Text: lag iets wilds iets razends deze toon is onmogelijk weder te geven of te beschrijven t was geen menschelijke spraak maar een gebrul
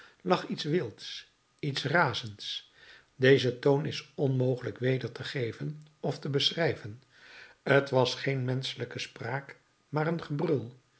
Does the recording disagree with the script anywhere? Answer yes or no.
no